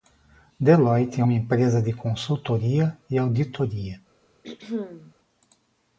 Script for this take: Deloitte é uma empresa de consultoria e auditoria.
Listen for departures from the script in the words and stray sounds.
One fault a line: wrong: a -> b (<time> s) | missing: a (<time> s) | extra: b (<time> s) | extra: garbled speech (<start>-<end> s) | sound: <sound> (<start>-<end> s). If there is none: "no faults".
sound: throat clearing (4.4-5.1 s)